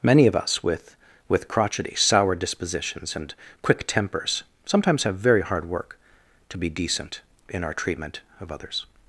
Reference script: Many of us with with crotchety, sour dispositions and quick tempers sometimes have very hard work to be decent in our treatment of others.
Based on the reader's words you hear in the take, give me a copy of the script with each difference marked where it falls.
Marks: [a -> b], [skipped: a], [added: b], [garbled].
Many of us with with crotchety, sour dispositions and quick tempers sometimes have very hard work to be decent in our treatment of others.